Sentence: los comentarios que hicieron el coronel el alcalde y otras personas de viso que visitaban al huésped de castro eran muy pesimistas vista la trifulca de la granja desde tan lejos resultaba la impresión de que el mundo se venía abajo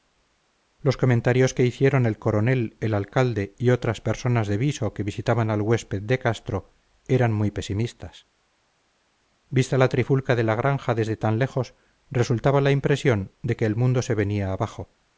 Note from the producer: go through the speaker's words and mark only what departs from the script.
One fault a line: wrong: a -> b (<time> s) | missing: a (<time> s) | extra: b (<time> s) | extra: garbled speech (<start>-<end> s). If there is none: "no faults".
no faults